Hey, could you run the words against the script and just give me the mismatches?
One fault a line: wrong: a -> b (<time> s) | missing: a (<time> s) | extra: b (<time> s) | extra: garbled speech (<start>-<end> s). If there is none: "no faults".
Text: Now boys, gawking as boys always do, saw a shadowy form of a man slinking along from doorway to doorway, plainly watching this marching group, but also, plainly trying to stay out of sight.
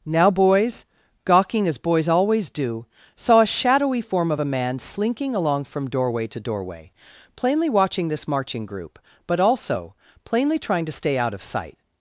no faults